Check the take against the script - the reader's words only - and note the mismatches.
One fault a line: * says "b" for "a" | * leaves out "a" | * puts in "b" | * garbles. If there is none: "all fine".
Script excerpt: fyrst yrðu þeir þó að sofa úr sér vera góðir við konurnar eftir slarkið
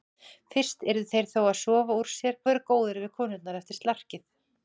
all fine